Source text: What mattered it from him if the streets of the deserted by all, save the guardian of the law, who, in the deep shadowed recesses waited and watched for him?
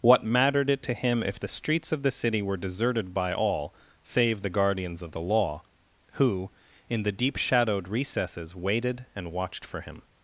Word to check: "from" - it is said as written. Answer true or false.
false